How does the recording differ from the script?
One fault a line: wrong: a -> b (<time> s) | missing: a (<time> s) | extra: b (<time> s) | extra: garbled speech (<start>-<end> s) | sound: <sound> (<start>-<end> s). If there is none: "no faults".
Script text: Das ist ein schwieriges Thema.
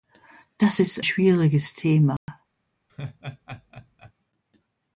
missing: ein (1.0 s)
sound: dropout (2.2-2.3 s)
sound: laugh (2.9-4.1 s)